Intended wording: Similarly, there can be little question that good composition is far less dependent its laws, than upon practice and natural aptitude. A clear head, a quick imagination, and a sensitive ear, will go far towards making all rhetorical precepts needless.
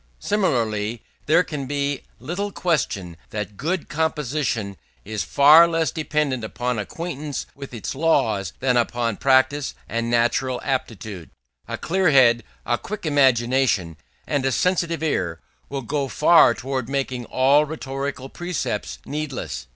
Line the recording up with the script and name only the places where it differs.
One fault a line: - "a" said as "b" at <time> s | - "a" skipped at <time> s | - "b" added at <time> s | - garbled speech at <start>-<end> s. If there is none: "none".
- "upon acquaintance with" added at 6.4 s